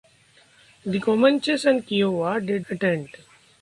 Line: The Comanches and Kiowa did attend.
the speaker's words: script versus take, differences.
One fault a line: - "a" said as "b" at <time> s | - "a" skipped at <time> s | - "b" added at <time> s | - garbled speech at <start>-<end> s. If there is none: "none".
none